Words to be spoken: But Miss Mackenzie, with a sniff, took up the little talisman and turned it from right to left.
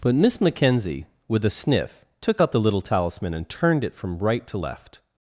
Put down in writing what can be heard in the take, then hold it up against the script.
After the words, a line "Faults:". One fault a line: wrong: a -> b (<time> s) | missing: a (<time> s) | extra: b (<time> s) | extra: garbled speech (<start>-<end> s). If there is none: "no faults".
But Miss Mackenzie, with a sniff, took up the little talisman and turned it from right to left.
Faults:
no faults